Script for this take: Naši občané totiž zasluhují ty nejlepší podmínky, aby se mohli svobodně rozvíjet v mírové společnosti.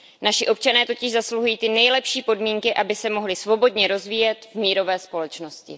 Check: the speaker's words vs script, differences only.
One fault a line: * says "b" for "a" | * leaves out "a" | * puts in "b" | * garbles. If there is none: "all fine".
all fine